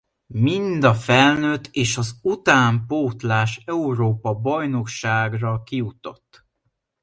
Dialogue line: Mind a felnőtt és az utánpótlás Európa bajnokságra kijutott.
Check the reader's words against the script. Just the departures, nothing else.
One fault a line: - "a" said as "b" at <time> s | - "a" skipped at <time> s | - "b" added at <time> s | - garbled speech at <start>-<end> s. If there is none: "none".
none